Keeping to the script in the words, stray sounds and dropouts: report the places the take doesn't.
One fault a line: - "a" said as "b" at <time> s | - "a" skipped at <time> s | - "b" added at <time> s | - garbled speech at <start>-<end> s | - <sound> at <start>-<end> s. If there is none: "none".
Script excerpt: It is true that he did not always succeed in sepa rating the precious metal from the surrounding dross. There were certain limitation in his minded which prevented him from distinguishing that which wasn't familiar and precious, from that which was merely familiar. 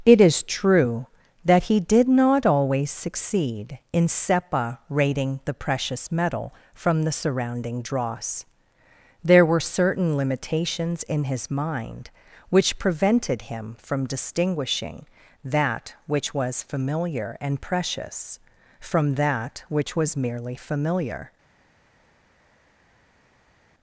- "limitation" said as "limitations" at 10.2 s
- "minded" said as "mind" at 11.5 s
- "wasn't" said as "was" at 16.3 s